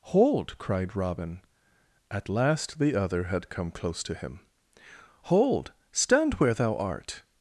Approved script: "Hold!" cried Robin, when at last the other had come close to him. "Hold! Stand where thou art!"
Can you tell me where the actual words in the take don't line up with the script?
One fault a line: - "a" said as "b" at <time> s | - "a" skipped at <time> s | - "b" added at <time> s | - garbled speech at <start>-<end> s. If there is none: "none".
- "when" skipped at 1.4 s